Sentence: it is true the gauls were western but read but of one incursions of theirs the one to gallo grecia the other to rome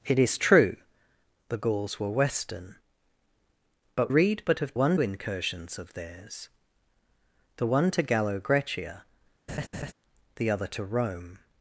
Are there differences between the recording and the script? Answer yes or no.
no